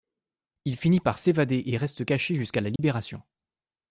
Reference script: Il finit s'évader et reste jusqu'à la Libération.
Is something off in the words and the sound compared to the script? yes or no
yes